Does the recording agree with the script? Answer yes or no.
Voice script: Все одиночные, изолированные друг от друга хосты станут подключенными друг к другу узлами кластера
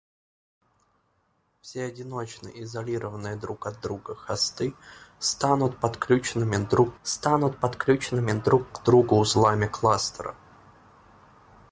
no